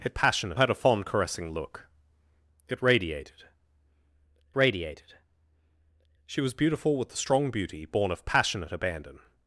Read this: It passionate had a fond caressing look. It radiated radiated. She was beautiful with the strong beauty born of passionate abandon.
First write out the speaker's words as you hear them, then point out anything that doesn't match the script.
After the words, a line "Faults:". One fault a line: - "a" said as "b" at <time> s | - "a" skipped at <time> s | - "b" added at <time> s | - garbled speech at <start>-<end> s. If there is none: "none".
It passionate had a fond caressing look. It radiated radiated. She was beautiful with the strong beauty born of passionate abandon.
Faults:
none